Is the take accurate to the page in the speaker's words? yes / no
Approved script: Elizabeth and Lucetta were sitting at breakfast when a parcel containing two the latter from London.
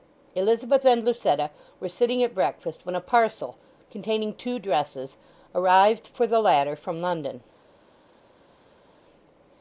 no